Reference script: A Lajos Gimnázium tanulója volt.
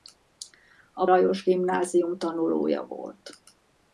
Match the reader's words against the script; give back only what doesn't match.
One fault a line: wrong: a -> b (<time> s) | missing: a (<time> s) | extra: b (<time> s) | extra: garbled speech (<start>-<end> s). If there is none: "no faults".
no faults